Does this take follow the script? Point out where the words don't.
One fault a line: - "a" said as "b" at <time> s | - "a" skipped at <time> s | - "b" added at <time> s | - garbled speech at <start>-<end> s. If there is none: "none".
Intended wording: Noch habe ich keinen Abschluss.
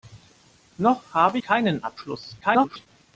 - "ich" skipped at 1.4 s
- garbled speech at 2.4-2.9 s